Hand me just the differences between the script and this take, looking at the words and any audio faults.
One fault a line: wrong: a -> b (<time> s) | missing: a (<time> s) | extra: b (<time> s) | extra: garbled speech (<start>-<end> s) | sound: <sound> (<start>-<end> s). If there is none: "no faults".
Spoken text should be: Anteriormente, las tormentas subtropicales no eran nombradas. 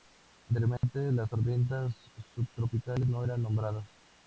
sound: dropout (0.8-0.8 s)